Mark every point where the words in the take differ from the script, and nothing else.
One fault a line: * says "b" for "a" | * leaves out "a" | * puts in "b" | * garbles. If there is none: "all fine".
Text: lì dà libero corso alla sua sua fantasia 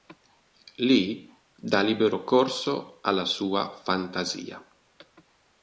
* leaves out "sua"